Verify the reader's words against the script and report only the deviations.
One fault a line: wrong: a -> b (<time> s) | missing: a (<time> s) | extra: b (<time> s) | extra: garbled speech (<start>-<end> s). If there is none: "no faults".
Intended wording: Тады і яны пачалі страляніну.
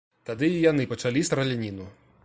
no faults